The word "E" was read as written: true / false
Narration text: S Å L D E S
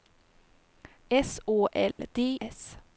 false